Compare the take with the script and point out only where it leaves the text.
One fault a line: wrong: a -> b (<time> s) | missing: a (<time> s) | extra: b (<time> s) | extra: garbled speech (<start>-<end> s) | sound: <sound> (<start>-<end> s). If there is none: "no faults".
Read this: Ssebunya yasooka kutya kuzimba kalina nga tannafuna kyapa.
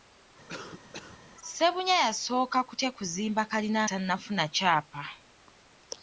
sound: cough (0.5-1.2 s)
missing: nga (3.8 s)